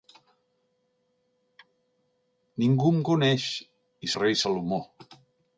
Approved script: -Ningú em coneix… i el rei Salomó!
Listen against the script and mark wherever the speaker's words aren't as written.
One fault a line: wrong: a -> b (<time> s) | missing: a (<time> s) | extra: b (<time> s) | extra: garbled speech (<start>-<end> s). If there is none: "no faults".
no faults